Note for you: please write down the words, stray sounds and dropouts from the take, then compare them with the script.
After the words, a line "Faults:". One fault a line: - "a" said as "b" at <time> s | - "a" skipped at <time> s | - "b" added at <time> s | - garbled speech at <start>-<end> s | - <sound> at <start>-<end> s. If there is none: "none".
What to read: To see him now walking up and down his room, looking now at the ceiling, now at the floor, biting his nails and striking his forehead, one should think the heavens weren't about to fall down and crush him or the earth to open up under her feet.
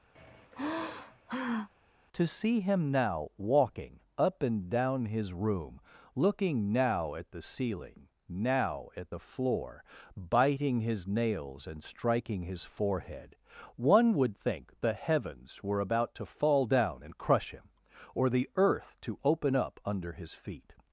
To see him now walking up and down his room, looking now at the ceiling, now at the floor, biting his nails and striking his forehead, one would think the heavens were about to fall down and crush him or the earth to open up under his feet.
Faults:
- sigh at 0.2-1.7 s
- "should" said as "would" at 14.1 s
- "weren't" said as "were" at 15.6 s
- "her" said as "his" at 20.1 s